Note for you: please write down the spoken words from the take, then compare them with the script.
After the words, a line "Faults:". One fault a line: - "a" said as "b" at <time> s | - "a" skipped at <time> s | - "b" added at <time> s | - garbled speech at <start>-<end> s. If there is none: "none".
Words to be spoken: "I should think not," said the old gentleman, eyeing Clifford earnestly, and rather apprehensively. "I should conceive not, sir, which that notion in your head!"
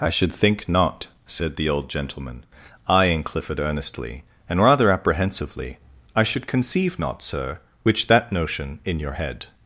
"I should think not," said the old gentleman, eyeing Clifford earnestly, and rather apprehensively. "I should conceive not, sir, which that notion in your head!"
Faults:
none